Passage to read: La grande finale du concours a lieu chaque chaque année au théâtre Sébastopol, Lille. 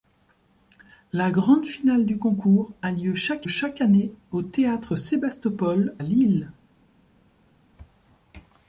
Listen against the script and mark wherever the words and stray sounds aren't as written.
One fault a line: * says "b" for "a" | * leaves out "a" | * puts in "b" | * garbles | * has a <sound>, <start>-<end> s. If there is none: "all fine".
all fine